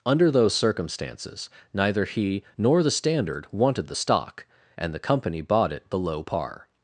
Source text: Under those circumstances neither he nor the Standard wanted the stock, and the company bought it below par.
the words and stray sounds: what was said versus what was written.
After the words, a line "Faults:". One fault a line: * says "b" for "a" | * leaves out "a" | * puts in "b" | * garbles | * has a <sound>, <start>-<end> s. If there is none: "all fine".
Under those circumstances neither he nor the Standard wanted the stock, and the company bought it below par.
Faults:
all fine